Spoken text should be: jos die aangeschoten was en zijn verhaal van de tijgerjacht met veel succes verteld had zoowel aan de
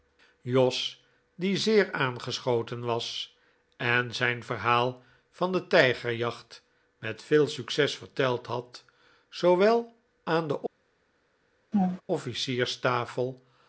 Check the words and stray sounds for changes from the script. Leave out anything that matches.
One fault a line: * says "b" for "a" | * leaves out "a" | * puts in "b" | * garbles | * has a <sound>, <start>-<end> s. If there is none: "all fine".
* puts in "zeer"
* has a laugh, 11.7-12.0 s